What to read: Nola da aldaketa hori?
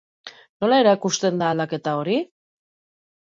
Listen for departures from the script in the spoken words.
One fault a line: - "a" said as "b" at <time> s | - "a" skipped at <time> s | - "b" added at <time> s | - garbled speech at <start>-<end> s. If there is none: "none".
- "erakusten" added at 0.8 s